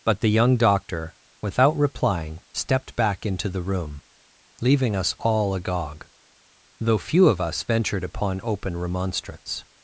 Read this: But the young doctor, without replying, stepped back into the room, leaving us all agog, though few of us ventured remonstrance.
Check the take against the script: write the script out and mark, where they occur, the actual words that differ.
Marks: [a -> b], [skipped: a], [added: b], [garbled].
But the young doctor, without replying, stepped back into the room, leaving us all agog, though few of us ventured [added: upon open] remonstrance.